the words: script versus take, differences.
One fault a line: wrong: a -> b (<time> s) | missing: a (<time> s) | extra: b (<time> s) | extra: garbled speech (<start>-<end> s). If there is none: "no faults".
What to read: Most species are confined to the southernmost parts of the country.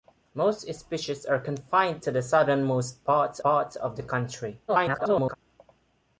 extra: parts (3.4 s)
extra: garbled speech (4.7-5.3 s)